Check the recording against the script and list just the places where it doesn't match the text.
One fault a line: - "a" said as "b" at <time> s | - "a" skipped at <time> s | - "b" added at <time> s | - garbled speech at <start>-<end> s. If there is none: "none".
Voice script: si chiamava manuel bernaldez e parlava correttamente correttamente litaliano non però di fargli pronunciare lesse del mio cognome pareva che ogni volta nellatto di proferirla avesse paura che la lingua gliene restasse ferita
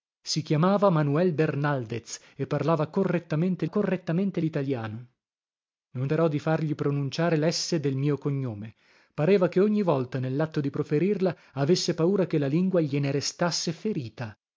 none